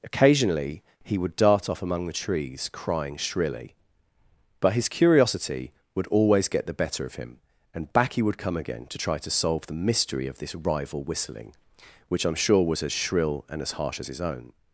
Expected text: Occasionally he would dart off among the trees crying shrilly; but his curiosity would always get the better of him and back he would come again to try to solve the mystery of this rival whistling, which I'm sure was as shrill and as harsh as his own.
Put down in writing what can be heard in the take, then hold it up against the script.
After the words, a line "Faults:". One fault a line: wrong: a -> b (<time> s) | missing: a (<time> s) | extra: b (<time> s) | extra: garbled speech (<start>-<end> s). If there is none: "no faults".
Occasionally he would dart off among the trees crying shrilly; but his curiosity would always get the better of him and back he would come again to try to solve the mystery of this rival whistling, which I'm sure was as shrill and as harsh as his own.
Faults:
no faults